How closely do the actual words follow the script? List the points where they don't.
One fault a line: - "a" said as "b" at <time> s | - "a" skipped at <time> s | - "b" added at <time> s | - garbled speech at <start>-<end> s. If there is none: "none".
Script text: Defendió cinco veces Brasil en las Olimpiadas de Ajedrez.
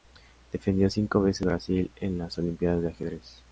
none